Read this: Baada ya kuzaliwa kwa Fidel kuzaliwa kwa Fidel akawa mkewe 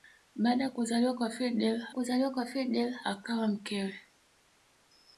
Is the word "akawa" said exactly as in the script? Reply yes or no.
yes